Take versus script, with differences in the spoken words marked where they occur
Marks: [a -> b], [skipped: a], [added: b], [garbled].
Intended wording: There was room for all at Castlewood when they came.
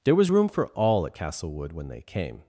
There was room for all at Castlewood when they came.